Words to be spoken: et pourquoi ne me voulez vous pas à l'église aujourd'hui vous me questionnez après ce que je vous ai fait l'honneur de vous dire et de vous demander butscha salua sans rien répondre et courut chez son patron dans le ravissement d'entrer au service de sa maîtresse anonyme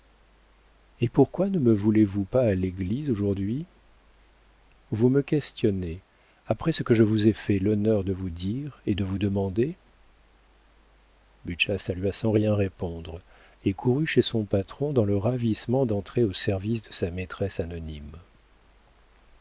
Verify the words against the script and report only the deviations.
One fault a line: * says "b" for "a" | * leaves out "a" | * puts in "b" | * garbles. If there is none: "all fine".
all fine